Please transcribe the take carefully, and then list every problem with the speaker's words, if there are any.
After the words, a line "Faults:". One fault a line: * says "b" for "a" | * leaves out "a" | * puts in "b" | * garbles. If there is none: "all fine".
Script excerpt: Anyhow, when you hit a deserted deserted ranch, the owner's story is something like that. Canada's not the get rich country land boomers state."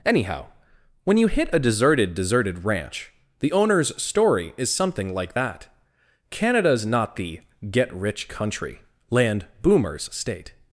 Anyhow, when you hit a deserted deserted ranch, the owner's story is something like that. Canada's not the get rich country land boomers state."
Faults:
all fine